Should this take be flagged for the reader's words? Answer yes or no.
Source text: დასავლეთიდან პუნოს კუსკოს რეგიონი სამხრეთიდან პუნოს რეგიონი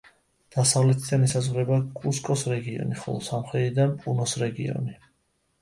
yes